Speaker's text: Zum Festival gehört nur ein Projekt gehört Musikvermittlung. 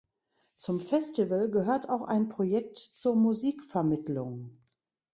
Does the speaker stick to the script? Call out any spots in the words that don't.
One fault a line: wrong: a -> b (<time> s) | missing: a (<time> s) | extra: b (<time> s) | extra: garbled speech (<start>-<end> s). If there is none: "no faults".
wrong: nur -> auch (1.9 s)
wrong: gehört -> zur (2.8 s)